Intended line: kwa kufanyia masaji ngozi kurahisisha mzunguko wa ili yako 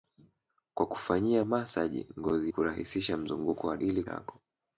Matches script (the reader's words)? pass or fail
pass